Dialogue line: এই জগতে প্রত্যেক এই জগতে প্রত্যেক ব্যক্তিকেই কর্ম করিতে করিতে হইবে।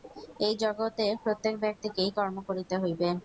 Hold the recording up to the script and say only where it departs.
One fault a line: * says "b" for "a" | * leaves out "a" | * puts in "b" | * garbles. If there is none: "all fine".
* leaves out "এই জগতে প্রত্যেক"
* leaves out "করিতে"